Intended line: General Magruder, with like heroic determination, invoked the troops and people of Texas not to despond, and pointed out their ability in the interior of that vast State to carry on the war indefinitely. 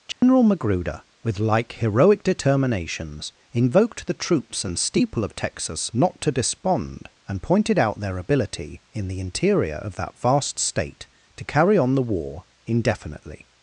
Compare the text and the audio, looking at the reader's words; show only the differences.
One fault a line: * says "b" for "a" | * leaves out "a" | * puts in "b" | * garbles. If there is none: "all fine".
* says "determinations" for "determination"
* says "steeple" for "people"